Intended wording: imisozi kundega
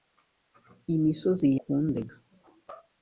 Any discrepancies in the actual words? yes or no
no